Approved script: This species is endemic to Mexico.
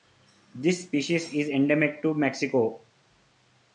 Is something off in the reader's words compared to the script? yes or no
no